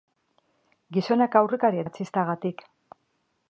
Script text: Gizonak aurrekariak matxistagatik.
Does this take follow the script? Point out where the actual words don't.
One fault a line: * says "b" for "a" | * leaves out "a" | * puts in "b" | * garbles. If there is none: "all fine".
all fine